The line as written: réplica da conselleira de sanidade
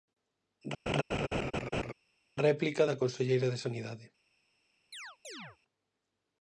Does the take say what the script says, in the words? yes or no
yes